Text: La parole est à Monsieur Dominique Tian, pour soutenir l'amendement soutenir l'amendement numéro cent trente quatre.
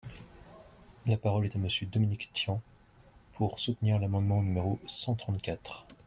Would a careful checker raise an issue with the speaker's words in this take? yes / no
yes